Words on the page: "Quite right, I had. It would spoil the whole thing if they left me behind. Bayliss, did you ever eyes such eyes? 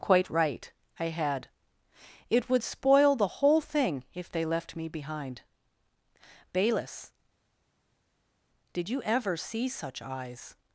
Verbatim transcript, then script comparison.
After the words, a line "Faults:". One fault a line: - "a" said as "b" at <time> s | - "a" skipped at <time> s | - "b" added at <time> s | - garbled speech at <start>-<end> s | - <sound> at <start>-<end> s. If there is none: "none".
"Quite right, I had. It would spoil the whole thing if they left me behind. Bayliss, did you ever see such eyes?
Faults:
- "eyes" said as "see" at 9.4 s